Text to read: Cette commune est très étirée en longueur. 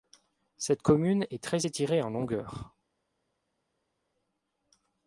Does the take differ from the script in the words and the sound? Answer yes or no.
no